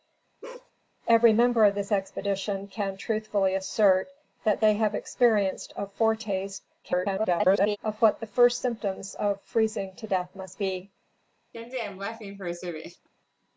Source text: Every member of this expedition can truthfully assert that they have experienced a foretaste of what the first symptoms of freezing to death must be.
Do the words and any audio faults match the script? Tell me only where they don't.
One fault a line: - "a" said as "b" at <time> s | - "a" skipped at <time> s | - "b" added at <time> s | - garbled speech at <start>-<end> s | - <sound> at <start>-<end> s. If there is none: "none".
- bark at 0.4-0.7 s
- garbled speech at 6.8-7.8 s
- laugh at 11.5-13.1 s